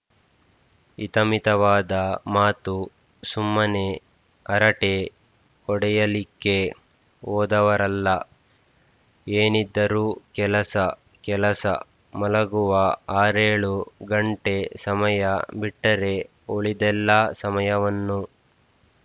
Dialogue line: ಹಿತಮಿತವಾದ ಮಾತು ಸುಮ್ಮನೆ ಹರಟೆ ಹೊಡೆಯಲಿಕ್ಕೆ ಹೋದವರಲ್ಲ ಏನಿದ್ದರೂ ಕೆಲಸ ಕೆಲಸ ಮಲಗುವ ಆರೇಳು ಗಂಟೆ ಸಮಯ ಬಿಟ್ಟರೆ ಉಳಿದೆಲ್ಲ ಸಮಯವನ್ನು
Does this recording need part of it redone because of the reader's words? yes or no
no